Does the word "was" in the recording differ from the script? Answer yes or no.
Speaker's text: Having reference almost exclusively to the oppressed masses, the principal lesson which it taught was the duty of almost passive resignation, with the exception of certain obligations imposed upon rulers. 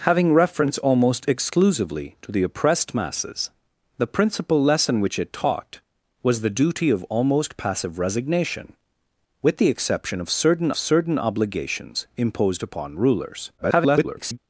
no